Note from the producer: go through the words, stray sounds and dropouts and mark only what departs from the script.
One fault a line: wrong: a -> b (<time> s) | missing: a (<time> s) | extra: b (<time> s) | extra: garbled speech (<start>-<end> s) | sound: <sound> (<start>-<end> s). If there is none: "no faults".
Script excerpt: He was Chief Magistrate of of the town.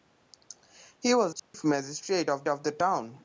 sound: dropout (1.4-1.5 s)